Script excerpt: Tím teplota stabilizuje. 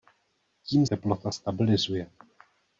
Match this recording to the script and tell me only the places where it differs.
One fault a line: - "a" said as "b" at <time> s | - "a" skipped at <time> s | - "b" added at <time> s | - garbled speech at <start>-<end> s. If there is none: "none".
none